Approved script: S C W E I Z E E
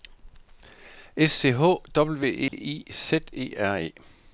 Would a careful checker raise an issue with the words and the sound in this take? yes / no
yes